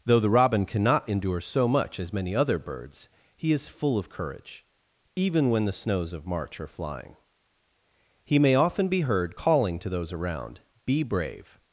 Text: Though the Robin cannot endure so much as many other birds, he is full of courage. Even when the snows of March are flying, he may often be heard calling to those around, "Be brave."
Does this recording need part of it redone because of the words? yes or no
no